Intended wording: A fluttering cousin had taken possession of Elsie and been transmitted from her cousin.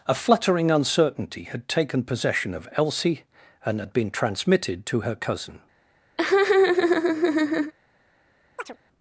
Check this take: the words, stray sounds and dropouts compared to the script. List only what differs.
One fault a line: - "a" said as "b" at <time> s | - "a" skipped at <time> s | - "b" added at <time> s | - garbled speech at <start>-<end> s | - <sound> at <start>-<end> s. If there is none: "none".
- "cousin" said as "uncertainty" at 0.7 s
- "had" added at 3.8 s
- "from" said as "to" at 4.9 s
- laugh at 6.2-7.7 s
- chirp at 8.6-8.8 s